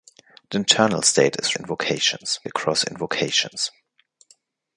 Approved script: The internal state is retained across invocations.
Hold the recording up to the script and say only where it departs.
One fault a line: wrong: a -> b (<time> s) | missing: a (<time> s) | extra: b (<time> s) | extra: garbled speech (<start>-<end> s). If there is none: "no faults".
wrong: retained -> invocations (1.5 s)